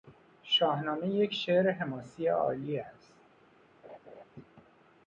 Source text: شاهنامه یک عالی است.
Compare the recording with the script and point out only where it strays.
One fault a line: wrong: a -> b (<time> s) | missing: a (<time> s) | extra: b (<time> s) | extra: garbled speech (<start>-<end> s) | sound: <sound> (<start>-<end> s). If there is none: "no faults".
extra: شعر حماسی (1.3 s)
sound: laugh (3.8-4.2 s)